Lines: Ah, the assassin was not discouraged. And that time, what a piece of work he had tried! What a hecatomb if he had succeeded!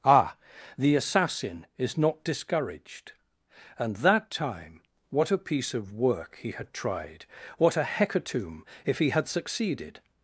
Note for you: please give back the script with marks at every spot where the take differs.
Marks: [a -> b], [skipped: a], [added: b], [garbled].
Ah, the assassin [was -> is] not discouraged. And that time, what a piece of work he had tried! What a hecatomb if he had succeeded!